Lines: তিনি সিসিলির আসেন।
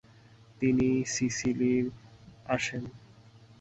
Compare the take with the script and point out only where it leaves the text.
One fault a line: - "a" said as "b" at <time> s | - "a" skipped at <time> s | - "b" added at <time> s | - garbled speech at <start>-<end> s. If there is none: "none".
none